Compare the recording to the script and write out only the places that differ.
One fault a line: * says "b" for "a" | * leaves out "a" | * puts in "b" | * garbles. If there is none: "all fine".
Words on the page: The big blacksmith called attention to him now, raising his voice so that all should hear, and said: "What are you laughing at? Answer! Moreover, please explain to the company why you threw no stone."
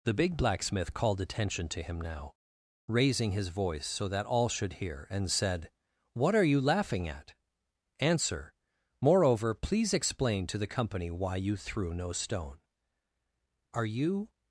* puts in "Are you"